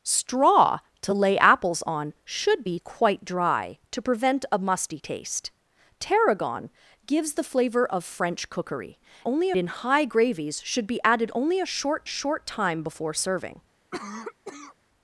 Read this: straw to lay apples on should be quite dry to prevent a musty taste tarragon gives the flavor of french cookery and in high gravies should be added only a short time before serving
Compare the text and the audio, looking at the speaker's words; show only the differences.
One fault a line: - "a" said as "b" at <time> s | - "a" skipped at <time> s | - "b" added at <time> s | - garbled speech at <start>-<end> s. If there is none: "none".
- "and" said as "only" at 9.3 s
- "short" added at 12.1 s